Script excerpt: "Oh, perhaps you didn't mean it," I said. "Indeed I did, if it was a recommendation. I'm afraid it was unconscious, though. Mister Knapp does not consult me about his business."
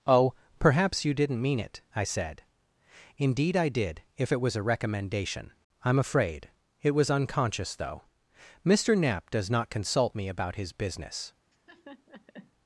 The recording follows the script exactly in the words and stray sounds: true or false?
false